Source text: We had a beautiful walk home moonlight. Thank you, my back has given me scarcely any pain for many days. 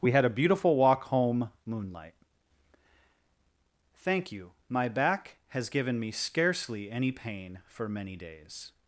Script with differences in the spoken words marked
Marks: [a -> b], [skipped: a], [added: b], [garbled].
We had a beautiful walk home moonlight. Thank you, my back has given me scarcely any pain for many days.